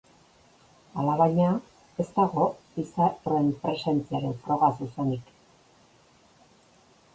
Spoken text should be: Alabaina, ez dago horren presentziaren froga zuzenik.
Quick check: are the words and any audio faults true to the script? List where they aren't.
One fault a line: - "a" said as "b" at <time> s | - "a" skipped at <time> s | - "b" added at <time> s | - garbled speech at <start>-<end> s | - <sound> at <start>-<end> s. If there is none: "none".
none